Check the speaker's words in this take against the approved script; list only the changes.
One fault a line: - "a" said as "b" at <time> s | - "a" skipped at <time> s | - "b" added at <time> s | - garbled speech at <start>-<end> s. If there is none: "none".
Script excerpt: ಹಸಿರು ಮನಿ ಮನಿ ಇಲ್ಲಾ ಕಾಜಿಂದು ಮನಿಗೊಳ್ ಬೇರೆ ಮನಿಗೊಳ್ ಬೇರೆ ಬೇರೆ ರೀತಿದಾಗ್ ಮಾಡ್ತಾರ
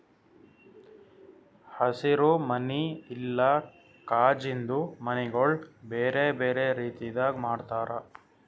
- "ಮನಿ" skipped at 2.8 s
- "ಮನಿಗೊಳ್ ಬೇರೆ" skipped at 6.2 s